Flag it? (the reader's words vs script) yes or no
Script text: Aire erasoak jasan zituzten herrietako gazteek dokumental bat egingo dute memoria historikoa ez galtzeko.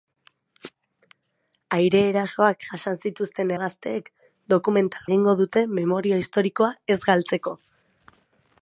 yes